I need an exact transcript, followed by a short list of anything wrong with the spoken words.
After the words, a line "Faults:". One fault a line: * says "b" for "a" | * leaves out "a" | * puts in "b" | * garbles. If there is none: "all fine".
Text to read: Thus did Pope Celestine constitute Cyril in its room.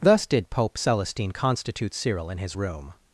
Thus did Pope Celestine constitute Cyril in his room.
Faults:
* says "his" for "its"